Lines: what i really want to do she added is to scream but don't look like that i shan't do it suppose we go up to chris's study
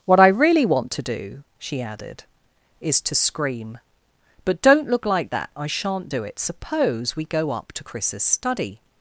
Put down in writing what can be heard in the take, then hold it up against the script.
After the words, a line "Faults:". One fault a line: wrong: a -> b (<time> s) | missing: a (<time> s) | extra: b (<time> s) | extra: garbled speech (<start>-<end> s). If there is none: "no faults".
what i really want to do she added is to scream but don't look like that i shan't do it suppose we go up to chris's study
Faults:
no faults